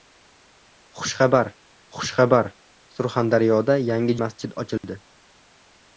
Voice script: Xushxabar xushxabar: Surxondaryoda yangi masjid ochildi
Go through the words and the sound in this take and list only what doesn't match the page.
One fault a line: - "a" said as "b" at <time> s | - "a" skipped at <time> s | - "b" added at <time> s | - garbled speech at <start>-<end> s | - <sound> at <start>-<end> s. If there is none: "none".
- dropout at 4.8-4.8 s